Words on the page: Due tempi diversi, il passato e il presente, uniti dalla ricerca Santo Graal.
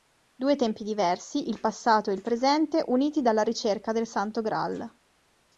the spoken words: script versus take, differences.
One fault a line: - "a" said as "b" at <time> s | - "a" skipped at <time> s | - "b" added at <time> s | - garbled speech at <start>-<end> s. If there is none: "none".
- "del" added at 3.9 s